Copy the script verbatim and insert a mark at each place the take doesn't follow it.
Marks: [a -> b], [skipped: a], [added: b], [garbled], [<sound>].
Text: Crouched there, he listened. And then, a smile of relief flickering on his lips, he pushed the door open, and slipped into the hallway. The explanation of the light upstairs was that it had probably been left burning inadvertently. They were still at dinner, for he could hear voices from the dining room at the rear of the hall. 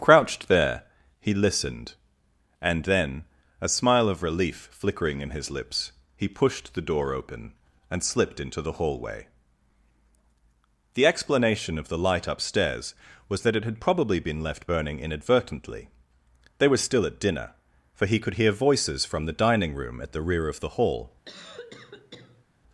Crouched there, he listened. And then, a smile of relief flickering [on -> in] his lips, he pushed the door open, and slipped into the hallway. The explanation of the light upstairs was that it had probably been left burning inadvertently. They were still at dinner, for he could hear voices from the dining room at the rear of the hall. [cough]